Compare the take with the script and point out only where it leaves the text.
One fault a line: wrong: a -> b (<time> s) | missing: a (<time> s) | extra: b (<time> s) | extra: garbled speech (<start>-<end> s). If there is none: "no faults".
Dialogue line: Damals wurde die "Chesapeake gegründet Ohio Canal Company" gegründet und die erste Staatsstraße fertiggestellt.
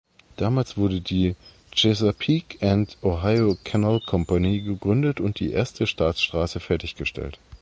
wrong: gegründet -> and (2.7 s)